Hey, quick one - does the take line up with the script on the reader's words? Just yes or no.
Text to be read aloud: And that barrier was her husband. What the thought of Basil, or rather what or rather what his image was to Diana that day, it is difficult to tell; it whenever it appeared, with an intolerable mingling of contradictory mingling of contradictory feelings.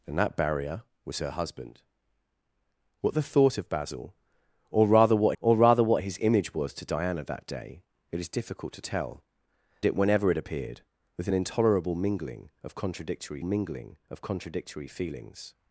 yes